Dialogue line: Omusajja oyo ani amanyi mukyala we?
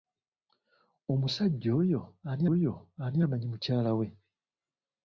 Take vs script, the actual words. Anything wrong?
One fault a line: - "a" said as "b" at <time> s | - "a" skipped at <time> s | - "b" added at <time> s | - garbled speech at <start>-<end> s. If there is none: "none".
- "oyo ani" added at 2.5 s